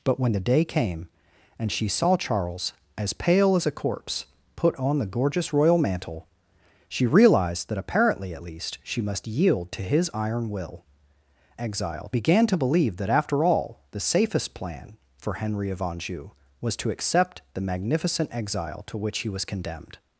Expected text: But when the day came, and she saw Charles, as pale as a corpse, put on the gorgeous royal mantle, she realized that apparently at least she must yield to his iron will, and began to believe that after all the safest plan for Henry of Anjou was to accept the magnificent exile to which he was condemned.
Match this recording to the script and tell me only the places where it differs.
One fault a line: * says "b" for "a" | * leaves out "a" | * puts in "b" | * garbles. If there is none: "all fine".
* says "exile" for "and"